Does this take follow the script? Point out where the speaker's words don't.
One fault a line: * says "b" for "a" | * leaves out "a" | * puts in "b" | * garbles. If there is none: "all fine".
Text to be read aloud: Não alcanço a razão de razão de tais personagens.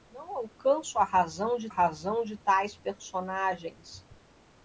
all fine